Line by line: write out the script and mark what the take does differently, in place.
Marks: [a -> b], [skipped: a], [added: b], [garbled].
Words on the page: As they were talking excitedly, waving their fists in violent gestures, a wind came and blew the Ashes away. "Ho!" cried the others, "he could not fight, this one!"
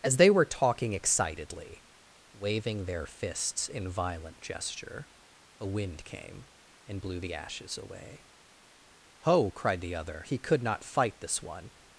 As they were talking excitedly, waving their fists in violent [gestures, -> gesture] a wind came and blew the Ashes away. "Ho!" cried the [others, -> other] "he could not fight, this one!"